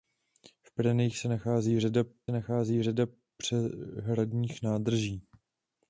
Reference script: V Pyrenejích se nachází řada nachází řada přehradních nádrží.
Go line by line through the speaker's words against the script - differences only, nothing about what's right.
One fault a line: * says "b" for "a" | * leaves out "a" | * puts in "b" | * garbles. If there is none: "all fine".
all fine